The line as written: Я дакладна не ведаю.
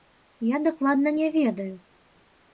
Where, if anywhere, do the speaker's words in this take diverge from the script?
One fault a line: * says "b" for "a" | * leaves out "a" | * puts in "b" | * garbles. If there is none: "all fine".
all fine